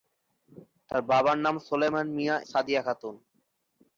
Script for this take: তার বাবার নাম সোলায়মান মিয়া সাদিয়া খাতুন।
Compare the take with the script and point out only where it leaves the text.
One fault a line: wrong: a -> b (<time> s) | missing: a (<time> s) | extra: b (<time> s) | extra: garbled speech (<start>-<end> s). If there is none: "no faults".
no faults